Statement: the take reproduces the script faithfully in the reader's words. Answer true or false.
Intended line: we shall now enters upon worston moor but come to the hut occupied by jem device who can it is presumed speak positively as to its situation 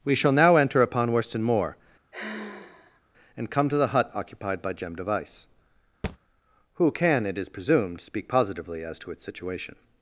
false